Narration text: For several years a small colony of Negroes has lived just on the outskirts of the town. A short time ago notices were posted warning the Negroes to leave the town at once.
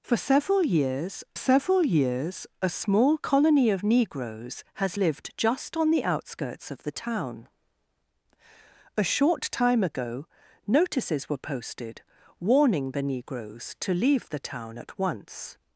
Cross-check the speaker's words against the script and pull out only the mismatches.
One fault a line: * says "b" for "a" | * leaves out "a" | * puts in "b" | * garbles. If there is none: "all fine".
* puts in "several years"